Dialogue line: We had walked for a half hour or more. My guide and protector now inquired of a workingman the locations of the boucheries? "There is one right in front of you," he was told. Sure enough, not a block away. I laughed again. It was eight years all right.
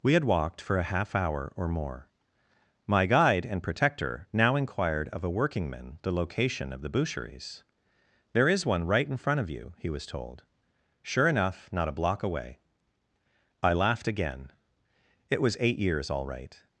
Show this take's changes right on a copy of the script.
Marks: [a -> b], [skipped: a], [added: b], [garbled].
We had walked for a half hour or more. My guide and protector now inquired of a workingman the [locations -> location] of the boucheries? "There is one right in front of you," he was told. Sure enough, not a block away. I laughed again. It was eight years all right.